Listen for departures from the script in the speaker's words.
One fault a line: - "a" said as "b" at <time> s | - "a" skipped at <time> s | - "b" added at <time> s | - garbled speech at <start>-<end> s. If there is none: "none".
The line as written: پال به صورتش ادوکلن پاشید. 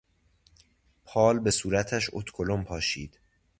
none